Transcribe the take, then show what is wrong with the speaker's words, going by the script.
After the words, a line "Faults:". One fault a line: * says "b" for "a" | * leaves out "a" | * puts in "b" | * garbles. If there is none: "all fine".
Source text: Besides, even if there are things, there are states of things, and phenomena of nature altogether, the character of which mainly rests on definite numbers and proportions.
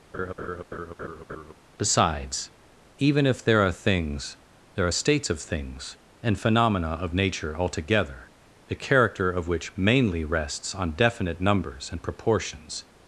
Besides, even if there are things, there are states of things, and phenomena of nature altogether, the character of which mainly rests on definite numbers and proportions.
Faults:
all fine